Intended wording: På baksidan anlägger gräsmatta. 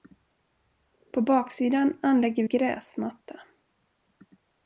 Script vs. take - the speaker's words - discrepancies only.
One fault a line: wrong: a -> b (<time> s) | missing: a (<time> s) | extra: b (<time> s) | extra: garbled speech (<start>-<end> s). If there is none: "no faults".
no faults